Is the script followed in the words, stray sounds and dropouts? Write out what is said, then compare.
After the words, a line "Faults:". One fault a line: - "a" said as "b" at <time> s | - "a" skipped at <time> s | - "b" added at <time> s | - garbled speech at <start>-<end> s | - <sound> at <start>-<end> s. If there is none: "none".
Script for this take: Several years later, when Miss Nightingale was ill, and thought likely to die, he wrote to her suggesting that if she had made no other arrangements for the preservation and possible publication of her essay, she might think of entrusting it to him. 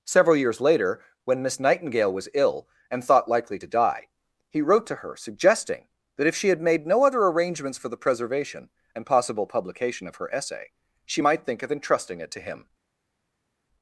Several years later, when Miss Nightingale was ill, and thought likely to die, he wrote to her suggesting that if she had made no other arrangements for the preservation and possible publication of her essay, she might think of entrusting it to him.
Faults:
none